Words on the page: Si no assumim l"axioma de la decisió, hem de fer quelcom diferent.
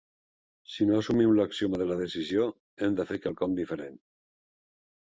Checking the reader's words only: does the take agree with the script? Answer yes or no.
yes